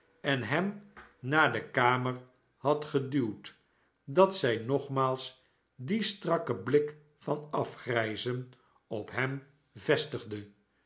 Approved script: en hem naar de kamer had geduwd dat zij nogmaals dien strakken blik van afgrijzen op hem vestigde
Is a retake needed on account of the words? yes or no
no